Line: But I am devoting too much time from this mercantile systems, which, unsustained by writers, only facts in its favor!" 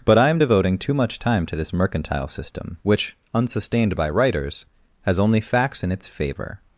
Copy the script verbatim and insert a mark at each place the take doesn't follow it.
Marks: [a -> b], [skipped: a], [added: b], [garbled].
But I am devoting too much time [from -> to] this mercantile [systems, -> system] which, unsustained by writers, [added: has] only facts in its favor!"